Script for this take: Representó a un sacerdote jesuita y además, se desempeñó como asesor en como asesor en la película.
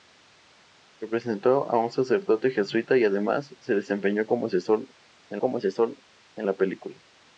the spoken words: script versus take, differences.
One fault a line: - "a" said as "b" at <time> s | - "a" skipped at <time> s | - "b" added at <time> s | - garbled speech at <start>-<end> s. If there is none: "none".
none